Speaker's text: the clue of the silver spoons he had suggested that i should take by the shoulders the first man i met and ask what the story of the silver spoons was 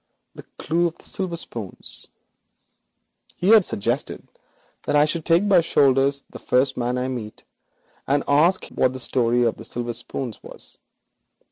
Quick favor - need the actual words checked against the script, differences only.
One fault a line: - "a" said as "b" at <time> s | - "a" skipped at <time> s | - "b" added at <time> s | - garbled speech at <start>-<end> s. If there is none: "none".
none